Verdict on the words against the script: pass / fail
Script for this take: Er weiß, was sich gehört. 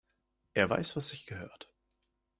pass